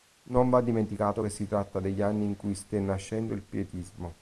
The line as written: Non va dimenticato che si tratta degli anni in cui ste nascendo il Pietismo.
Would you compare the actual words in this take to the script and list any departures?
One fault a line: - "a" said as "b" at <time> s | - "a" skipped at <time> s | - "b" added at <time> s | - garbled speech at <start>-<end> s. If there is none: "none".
none